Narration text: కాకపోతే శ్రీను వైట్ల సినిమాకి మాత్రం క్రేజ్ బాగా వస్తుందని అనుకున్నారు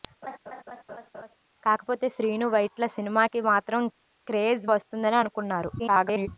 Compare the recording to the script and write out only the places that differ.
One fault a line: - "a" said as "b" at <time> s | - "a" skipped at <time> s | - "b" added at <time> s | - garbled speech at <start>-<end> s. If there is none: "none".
- "బాగా" skipped at 4.7 s
- garbled speech at 5.8-6.3 s